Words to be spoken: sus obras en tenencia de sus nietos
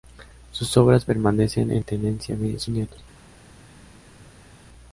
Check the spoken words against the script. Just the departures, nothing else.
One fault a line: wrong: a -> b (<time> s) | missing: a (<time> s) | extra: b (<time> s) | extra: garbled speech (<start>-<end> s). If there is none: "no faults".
extra: permanecen (1.0 s)